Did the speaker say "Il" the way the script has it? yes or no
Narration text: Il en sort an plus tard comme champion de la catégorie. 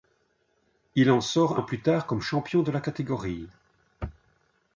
yes